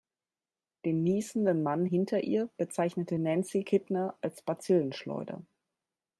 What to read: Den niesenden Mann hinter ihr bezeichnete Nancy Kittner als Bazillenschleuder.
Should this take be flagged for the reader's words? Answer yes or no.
no